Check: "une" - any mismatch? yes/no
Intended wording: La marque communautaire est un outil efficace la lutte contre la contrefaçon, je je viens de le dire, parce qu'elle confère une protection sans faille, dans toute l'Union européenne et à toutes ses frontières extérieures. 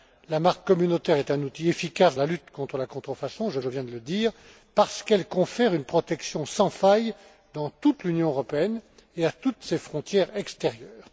no